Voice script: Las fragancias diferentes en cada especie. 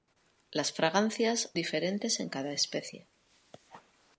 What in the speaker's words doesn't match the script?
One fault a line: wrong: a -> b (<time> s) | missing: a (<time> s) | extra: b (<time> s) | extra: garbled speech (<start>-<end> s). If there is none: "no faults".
no faults